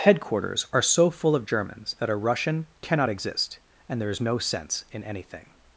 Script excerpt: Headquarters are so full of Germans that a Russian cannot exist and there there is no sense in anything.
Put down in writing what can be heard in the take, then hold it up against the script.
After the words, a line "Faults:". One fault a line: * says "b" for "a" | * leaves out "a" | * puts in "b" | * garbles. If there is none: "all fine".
Headquarters are so full of Germans that a Russian cannot exist and there is no sense in anything.
Faults:
* leaves out "there"